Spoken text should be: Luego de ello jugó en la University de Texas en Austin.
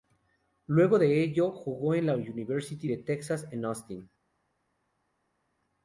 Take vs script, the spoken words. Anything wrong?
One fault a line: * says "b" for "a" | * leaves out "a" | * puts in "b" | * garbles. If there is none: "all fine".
all fine